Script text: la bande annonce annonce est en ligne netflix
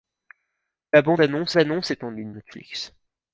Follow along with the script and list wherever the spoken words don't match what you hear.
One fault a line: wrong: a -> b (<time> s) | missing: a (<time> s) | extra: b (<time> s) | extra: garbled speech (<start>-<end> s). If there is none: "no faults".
no faults